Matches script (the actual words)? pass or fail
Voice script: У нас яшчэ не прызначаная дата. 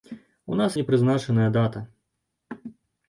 fail